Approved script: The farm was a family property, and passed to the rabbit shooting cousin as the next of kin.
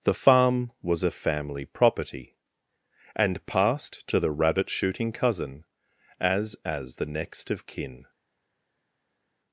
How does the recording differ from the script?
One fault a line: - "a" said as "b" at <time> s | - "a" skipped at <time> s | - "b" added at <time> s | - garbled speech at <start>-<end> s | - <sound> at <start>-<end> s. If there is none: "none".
- "as" added at 6.6 s